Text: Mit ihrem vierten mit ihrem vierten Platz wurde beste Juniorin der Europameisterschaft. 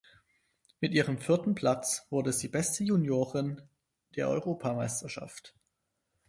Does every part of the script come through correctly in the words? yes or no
no